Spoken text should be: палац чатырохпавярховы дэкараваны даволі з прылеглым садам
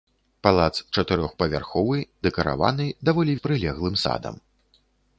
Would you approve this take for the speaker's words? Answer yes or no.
yes